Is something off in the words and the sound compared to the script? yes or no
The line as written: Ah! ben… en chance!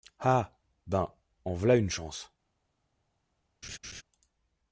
yes